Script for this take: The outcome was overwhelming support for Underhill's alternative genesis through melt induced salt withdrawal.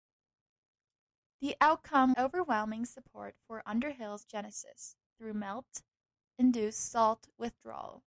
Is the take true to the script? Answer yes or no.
no